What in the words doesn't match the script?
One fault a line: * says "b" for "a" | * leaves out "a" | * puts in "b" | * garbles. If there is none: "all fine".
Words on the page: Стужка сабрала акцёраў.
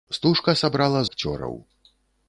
all fine